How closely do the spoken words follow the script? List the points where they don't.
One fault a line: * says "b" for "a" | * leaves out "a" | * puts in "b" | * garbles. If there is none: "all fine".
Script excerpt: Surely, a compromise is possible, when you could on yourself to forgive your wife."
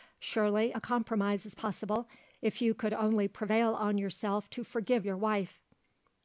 * says "if" for "when"
* puts in "only prevail"